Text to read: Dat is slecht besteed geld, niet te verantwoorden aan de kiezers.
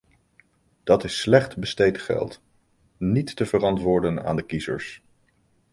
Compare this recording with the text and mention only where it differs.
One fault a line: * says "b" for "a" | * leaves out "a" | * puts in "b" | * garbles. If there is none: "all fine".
all fine